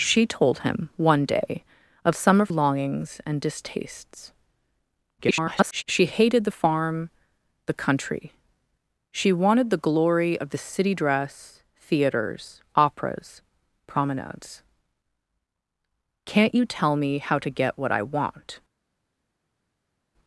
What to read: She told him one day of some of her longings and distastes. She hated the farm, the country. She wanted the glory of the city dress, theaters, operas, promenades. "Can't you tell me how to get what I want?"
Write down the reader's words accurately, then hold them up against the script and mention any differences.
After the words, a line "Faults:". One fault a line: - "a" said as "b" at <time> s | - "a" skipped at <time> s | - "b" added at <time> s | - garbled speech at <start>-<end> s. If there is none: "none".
She told him one day of some of longings and distastes. [garbled] She hated the farm, the country. She wanted the glory of the city dress, theaters, operas, promenades. "Can't you tell me how to get what I want?"
Faults:
- "her" skipped at 2.5 s
- garbled speech at 5.2-5.8 s